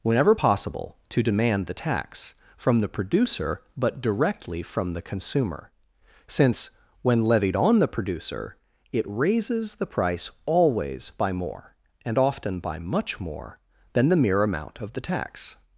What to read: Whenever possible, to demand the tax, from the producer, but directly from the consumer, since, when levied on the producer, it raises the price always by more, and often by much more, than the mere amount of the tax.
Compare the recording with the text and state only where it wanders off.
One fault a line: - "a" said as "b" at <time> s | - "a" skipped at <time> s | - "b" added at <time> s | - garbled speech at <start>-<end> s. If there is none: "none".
none